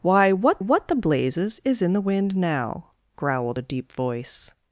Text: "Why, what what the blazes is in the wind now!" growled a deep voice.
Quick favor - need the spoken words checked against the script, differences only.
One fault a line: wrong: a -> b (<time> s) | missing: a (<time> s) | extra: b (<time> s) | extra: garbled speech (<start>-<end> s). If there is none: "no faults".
no faults